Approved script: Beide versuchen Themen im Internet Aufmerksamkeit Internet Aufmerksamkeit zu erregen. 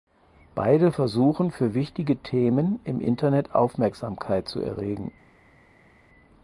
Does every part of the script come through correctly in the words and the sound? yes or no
no